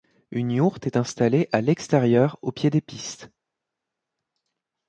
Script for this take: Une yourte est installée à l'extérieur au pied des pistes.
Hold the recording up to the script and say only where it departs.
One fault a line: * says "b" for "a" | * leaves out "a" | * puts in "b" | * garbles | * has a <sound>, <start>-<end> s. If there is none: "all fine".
all fine